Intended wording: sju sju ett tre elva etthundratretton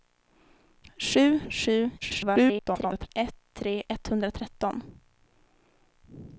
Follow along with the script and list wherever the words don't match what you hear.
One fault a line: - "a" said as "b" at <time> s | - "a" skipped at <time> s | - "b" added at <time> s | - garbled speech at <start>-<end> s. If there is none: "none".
- garbled speech at 2.0-3.1 s
- "elva" skipped at 3.8 s